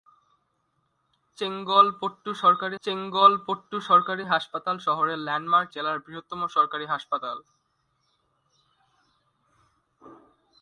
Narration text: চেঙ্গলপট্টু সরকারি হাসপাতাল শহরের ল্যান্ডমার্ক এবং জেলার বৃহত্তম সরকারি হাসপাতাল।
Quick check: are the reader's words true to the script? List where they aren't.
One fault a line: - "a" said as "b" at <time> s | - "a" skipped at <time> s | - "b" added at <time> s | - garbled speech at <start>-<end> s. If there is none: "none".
- "চেঙ্গলপট্টু সরকারি" added at 2.8 s
- "এবং" skipped at 5.7 s